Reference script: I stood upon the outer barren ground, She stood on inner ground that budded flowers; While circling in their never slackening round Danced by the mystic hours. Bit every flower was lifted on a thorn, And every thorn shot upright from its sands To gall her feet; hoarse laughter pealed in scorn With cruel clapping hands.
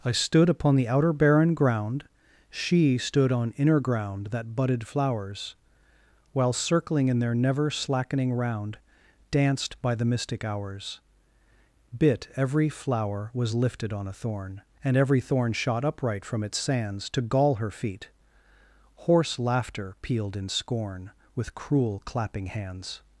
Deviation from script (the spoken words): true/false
false